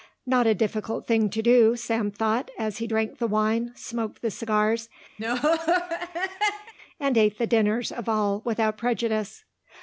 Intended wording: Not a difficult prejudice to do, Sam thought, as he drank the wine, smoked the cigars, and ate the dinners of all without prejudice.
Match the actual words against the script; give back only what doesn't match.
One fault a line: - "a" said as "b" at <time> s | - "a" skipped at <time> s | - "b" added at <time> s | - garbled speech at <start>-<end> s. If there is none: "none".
- "prejudice" said as "thing" at 1.1 s